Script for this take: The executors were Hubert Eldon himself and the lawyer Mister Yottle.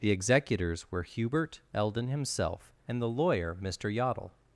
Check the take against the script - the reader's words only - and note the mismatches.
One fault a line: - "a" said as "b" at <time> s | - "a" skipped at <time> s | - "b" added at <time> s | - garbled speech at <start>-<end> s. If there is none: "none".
none